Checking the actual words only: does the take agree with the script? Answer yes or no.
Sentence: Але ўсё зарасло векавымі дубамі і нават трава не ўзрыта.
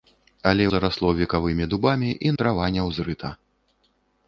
no